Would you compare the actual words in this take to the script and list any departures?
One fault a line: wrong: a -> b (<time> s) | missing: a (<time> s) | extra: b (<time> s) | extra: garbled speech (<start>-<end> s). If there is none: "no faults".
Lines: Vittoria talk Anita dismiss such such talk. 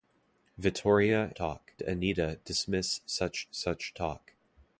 no faults